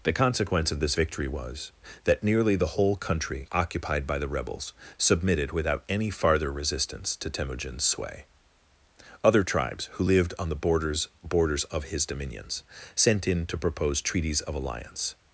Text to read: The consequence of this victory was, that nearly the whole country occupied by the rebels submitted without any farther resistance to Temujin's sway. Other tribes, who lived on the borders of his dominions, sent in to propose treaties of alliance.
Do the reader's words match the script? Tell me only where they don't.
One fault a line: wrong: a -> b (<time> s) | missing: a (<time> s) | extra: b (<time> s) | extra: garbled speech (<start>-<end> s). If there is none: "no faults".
extra: borders (11.2 s)